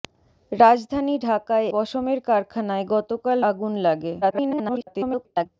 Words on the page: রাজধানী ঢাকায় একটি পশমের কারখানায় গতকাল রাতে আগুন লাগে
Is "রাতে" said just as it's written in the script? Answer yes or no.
no